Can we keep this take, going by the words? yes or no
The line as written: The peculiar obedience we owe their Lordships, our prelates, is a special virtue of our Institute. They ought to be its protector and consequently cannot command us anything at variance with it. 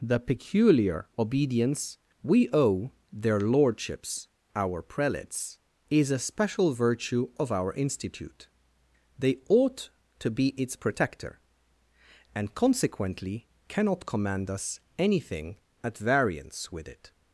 yes